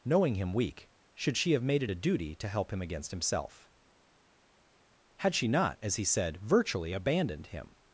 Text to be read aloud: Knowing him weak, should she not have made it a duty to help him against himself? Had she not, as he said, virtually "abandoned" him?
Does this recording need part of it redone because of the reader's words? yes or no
yes